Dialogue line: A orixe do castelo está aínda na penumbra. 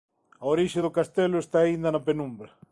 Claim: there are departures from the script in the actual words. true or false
false